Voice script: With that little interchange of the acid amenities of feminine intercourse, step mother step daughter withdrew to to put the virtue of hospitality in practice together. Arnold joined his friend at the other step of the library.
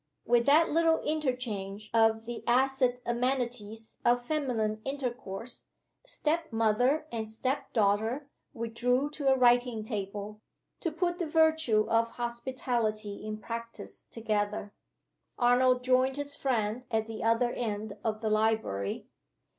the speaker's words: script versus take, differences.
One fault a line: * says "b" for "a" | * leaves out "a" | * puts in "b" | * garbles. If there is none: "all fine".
* puts in "and"
* puts in "a writing table"
* says "end" for "step"